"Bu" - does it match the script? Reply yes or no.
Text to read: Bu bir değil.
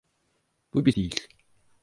yes